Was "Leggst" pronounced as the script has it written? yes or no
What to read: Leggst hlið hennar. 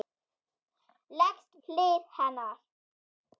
yes